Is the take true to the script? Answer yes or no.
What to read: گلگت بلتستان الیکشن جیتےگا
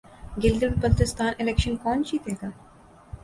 no